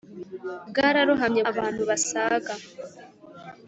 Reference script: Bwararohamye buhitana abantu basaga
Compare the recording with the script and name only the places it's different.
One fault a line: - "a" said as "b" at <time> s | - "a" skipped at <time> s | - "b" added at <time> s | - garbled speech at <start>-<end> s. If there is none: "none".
- "buhitana" skipped at 1.4 s